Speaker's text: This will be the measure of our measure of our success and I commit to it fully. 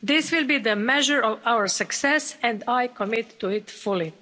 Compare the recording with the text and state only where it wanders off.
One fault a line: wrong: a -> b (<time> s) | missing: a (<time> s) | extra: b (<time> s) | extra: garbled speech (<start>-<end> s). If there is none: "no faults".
missing: measure of our (1.7 s)